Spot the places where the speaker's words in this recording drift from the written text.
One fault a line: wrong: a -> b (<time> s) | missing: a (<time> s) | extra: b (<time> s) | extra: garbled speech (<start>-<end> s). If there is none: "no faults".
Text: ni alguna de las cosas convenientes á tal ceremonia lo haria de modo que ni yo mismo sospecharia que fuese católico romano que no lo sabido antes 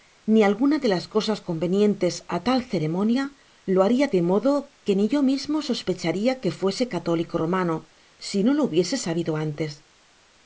wrong: que -> si (8.3 s)
extra: hubiese (8.7 s)